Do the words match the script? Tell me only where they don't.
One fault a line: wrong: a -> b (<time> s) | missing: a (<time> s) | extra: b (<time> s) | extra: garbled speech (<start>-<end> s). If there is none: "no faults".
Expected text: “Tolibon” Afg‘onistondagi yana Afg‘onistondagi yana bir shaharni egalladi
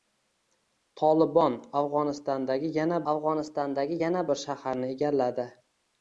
no faults